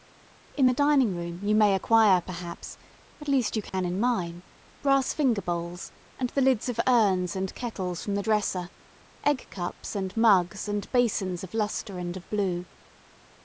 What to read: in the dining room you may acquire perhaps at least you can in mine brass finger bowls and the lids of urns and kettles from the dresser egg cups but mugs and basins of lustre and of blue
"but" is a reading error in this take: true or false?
true